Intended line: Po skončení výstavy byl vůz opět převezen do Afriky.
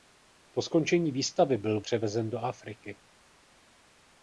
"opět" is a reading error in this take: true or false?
true